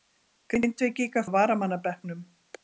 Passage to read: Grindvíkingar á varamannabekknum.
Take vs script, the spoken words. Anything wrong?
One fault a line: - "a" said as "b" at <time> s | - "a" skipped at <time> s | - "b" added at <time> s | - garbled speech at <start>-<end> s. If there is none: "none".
none